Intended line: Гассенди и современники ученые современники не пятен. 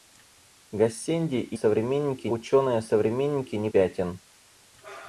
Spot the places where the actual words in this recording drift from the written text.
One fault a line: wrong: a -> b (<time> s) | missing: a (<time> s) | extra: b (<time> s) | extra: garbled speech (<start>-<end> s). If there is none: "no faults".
no faults